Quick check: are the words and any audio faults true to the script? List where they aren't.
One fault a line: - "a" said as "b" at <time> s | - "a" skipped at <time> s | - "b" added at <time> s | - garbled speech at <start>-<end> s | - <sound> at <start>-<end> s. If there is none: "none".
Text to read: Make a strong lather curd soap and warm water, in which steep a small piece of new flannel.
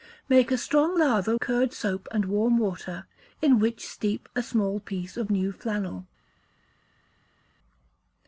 none